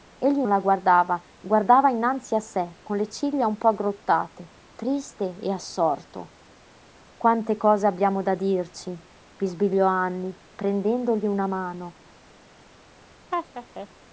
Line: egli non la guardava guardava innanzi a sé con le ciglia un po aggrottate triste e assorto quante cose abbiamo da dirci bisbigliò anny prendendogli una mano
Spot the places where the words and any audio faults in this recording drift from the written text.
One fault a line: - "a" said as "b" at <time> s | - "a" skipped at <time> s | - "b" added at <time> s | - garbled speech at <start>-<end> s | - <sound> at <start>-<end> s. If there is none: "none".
- "non" skipped at 0.4 s
- laugh at 13.3-13.9 s